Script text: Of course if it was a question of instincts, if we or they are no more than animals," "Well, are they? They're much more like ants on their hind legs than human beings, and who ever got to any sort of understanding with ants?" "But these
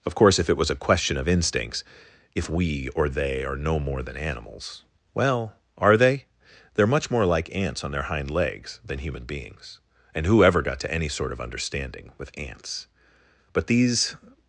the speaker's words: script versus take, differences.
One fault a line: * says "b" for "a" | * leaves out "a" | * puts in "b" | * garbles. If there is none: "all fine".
all fine